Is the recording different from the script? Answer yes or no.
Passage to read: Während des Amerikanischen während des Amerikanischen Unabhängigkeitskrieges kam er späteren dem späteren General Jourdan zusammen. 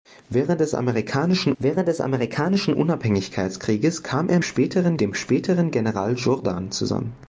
no